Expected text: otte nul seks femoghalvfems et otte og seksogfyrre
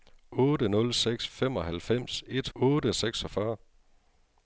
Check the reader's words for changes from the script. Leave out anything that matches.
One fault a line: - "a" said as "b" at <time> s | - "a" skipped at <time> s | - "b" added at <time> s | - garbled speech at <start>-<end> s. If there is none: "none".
none